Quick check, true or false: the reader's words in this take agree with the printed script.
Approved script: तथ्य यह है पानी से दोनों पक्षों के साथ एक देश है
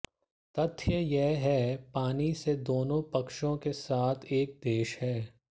true